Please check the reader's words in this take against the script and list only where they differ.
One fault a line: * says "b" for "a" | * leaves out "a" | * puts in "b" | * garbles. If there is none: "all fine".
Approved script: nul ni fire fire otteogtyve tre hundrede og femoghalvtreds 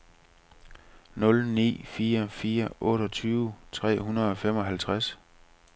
all fine